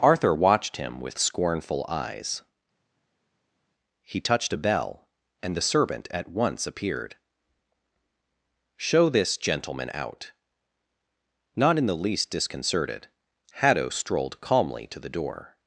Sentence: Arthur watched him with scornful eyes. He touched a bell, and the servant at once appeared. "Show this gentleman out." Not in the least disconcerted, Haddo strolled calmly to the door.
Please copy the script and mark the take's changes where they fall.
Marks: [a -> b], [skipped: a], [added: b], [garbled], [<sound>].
Arthur watched him with scornful eyes. He touched a bell, and the servant at once appeared. "Show this gentleman out." Not in the least disconcerted, Haddo strolled calmly to the door.